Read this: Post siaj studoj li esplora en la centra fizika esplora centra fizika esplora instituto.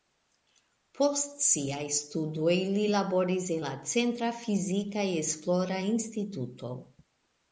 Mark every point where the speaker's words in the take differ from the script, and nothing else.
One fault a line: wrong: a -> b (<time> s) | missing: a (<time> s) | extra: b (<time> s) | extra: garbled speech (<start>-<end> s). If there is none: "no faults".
wrong: esplora -> laboris (2.9 s)
missing: centra fizika esplora (5.8 s)